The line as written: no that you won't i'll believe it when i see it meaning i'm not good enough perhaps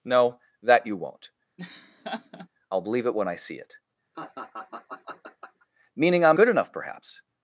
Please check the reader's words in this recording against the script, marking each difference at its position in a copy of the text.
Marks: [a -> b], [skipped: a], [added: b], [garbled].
no that you won't i'll believe it when i see it meaning i'm [skipped: not] good enough perhaps